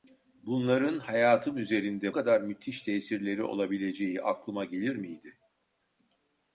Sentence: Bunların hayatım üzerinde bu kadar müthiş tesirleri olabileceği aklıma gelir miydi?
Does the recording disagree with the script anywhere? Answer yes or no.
yes